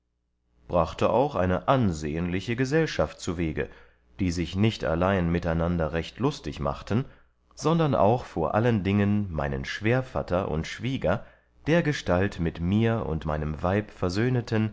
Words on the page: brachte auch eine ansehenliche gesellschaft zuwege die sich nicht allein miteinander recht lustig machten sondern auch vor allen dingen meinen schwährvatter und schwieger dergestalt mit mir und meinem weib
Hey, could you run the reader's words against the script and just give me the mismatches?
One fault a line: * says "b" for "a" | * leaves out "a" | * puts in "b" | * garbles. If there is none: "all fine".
all fine